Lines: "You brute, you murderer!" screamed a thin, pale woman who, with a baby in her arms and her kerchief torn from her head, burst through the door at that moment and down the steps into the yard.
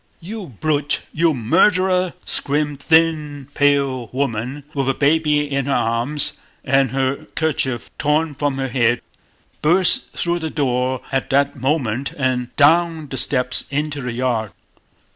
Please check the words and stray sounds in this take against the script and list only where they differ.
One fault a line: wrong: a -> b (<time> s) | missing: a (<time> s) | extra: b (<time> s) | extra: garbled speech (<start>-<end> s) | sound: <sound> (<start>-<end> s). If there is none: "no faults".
missing: who (4.6 s)